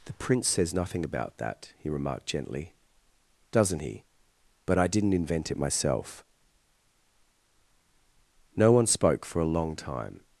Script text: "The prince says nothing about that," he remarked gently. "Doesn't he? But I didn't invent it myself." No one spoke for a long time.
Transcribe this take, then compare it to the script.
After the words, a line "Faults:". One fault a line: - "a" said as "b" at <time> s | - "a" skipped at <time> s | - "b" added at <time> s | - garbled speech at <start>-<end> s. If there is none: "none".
"The prince says nothing about that," he remarked gently. "Doesn't he? But I didn't invent it myself." No one spoke for a long time.
Faults:
none